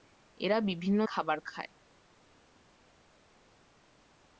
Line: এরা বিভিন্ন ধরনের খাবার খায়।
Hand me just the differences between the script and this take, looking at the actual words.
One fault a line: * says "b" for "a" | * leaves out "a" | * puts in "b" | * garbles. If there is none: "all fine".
* leaves out "ধরনের"